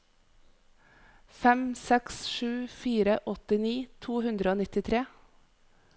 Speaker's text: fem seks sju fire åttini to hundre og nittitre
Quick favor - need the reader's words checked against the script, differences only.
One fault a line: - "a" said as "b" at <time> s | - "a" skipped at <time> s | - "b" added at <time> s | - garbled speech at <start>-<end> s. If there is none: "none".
none